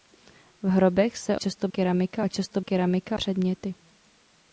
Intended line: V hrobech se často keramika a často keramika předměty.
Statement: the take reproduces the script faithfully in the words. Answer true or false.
true